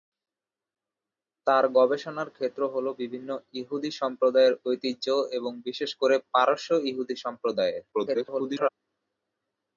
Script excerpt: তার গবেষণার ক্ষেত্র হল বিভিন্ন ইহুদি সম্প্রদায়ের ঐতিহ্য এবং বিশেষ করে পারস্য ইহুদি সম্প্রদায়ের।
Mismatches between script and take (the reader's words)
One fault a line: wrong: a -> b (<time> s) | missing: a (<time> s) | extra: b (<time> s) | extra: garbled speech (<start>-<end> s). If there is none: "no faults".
extra: garbled speech (7.9-8.7 s)